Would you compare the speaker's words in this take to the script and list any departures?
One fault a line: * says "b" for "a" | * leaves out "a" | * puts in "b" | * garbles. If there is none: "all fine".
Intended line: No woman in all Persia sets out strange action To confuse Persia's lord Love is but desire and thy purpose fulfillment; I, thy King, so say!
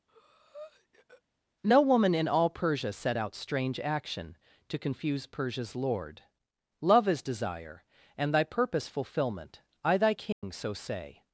* says "set" for "sets"
* leaves out "but"